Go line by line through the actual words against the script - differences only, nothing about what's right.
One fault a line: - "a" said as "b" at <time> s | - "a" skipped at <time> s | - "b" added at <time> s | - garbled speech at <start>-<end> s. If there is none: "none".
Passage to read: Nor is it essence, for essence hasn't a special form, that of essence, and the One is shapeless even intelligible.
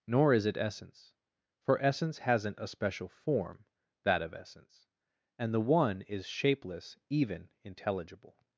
none